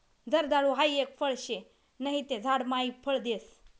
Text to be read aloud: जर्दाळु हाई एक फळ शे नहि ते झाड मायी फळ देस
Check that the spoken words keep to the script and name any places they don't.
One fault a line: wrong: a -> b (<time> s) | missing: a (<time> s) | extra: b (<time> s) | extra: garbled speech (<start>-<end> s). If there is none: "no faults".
no faults